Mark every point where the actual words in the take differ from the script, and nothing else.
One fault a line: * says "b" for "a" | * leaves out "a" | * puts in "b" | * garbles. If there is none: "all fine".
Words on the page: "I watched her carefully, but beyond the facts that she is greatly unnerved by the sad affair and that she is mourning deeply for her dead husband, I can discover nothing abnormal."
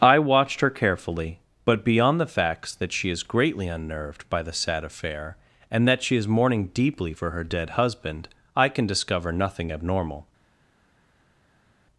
all fine